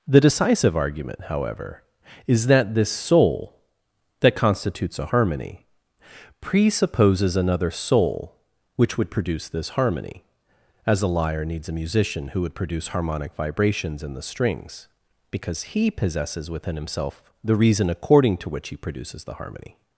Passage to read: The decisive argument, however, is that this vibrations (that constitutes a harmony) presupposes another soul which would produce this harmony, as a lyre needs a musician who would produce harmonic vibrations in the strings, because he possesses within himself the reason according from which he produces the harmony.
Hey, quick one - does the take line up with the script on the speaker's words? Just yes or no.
no